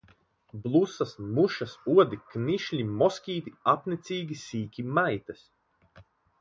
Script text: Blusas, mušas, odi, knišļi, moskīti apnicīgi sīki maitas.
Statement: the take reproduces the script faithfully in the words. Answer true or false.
true